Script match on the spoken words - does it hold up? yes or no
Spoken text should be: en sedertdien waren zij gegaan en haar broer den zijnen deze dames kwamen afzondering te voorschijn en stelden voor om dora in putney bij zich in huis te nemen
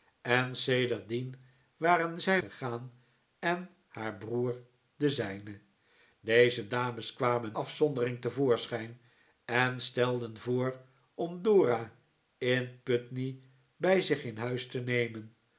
yes